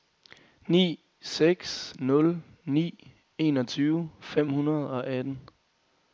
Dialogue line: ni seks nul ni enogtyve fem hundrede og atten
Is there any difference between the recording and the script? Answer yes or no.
no